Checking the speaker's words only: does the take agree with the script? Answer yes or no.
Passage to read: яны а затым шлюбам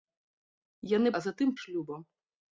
yes